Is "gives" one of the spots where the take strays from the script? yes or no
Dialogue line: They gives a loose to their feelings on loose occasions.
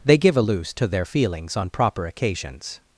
yes